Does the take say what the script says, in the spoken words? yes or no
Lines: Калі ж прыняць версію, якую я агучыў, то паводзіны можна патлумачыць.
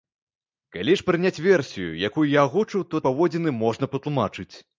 yes